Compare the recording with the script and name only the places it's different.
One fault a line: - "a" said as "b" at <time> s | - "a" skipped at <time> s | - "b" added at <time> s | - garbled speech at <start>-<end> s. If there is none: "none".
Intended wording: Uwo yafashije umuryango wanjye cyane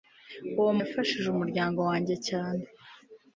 none